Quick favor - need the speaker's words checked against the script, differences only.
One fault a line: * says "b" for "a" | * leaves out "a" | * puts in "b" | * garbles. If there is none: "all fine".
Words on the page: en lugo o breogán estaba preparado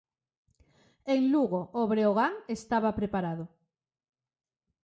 all fine